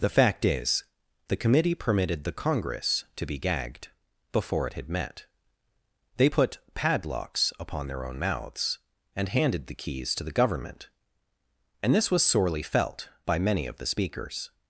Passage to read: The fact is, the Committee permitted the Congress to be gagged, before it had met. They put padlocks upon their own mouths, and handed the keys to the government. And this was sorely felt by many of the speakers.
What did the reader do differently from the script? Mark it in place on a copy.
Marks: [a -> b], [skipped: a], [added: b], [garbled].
The fact is, the Committee permitted the Congress to be gagged, before it had met. They put padlocks upon their own mouths, and handed the keys to the government. And this was sorely felt by many of the speakers.